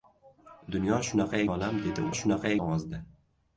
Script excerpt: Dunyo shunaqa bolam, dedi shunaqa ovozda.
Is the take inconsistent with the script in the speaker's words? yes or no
no